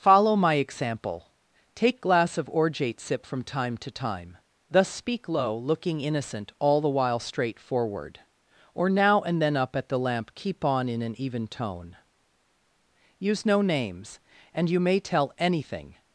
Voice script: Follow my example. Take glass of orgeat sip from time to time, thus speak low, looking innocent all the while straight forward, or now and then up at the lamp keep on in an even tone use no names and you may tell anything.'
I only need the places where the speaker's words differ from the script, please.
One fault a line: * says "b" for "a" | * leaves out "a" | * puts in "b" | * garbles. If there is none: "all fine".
all fine